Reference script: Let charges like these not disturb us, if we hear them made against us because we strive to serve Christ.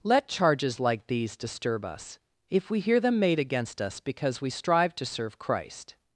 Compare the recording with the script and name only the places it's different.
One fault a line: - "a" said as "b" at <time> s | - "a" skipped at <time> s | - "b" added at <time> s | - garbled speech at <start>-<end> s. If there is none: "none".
- "not" skipped at 1.4 s